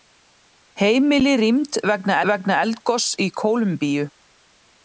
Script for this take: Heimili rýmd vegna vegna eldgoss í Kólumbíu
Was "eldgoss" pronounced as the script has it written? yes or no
yes